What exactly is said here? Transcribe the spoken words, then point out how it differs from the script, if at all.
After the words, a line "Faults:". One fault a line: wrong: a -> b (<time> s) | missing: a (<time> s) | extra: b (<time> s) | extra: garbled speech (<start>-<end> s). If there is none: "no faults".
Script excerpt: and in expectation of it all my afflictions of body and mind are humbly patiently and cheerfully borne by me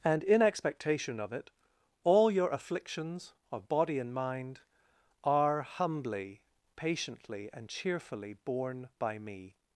and in expectation of it all your afflictions of body and mind are humbly patiently and cheerfully borne by me
Faults:
wrong: my -> your (2.3 s)